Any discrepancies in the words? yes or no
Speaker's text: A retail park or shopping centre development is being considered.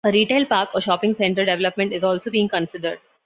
yes